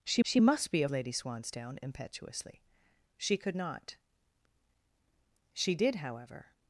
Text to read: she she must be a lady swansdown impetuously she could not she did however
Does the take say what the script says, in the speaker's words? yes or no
yes